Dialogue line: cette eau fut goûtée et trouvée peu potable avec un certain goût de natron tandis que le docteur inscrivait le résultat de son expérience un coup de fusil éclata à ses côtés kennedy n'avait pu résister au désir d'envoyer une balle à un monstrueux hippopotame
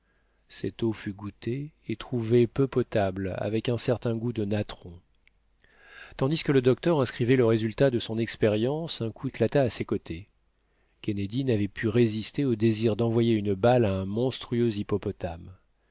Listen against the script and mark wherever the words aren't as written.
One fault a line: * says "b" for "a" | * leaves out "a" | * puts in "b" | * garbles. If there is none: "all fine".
* leaves out "de fusil"